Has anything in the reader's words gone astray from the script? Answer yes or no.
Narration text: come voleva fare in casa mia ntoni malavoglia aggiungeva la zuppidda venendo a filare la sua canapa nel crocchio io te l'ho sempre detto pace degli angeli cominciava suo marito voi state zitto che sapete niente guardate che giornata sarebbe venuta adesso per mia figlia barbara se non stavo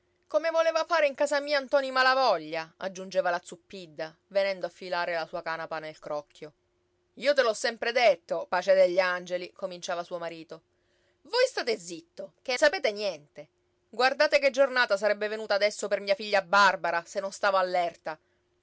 no